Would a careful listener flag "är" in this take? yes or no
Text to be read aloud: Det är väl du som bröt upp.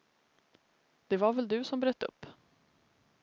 yes